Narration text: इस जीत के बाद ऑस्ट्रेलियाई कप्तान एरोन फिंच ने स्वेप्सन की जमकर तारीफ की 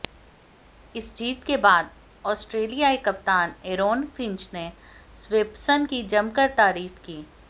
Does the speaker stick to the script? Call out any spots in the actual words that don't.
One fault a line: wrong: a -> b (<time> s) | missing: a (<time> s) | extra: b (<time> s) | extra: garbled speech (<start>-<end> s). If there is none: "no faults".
no faults